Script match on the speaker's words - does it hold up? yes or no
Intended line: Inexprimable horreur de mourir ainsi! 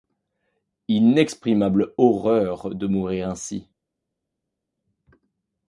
yes